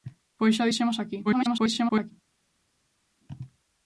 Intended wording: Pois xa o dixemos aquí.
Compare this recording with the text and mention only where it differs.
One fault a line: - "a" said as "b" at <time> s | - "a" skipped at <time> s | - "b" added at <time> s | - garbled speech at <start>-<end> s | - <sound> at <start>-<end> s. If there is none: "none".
- garbled speech at 1.2-2.1 s